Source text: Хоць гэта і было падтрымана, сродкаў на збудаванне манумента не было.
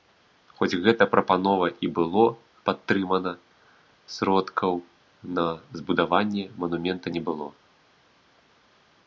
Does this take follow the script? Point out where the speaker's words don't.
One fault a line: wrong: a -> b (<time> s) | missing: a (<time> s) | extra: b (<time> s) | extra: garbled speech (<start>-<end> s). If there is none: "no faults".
extra: прапанова (1.1 s)